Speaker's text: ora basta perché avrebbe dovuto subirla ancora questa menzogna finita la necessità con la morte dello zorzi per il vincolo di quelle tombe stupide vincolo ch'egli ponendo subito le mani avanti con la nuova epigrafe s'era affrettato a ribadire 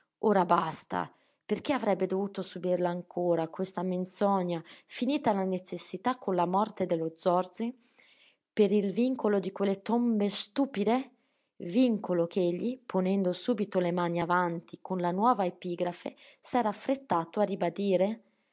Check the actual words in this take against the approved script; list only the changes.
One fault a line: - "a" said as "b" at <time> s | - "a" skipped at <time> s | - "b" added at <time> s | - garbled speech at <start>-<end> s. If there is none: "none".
none